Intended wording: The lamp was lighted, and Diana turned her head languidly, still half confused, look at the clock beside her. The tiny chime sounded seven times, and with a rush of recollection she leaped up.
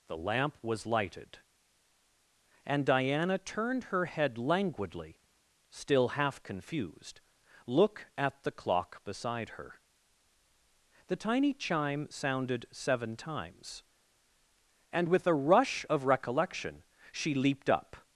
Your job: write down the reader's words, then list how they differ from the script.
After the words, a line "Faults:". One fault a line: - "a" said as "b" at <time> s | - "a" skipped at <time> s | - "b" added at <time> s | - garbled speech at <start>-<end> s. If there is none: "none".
The lamp was lighted, and Diana turned her head languidly, still half confused, look at the clock beside her. The tiny chime sounded seven times, and with a rush of recollection she leaped up.
Faults:
none